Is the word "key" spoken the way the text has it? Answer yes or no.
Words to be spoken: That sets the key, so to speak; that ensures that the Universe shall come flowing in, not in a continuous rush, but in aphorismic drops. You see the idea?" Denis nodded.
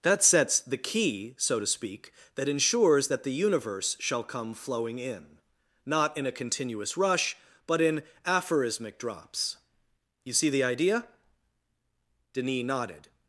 yes